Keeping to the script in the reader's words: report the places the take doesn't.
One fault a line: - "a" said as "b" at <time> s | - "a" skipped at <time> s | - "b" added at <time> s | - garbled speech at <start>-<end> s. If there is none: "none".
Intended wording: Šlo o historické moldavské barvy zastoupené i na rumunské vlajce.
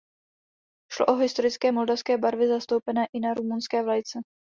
none